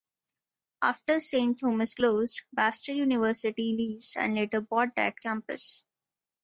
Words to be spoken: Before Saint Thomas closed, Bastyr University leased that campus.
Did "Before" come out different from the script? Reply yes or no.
yes